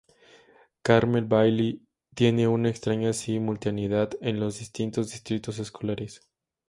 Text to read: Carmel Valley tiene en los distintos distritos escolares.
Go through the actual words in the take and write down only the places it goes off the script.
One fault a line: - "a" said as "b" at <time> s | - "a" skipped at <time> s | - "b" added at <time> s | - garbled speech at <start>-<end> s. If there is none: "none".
- "una extraña simultaneidad" added at 2.5 s